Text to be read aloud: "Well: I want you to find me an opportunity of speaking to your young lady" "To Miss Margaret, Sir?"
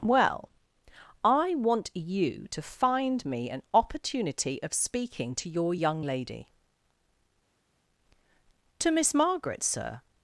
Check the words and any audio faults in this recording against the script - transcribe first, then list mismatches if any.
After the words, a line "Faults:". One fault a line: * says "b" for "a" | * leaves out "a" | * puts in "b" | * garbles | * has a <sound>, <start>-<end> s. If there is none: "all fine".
"Well: I want you to find me an opportunity of speaking to your young lady" "To Miss Margaret, Sir?"
Faults:
all fine